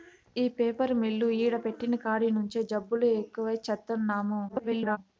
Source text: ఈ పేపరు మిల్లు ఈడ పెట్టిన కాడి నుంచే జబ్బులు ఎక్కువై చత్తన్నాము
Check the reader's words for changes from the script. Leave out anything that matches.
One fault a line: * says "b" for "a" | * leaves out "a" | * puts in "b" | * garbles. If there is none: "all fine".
* garbles